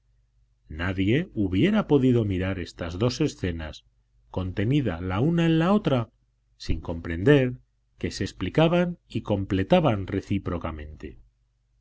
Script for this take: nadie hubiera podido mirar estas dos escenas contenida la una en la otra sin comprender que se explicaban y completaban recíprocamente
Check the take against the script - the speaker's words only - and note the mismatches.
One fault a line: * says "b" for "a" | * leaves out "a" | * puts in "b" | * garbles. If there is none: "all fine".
all fine